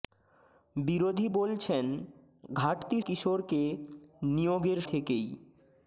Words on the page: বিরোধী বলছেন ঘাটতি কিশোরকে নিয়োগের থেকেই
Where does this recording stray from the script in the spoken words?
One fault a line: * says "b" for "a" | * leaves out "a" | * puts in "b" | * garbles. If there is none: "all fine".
all fine